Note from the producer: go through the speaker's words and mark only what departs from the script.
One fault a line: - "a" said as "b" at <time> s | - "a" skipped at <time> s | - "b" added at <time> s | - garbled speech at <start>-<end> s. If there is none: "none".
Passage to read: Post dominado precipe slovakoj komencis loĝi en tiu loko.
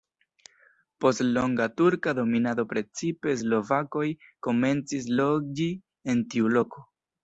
- "longa turka" added at 1.4 s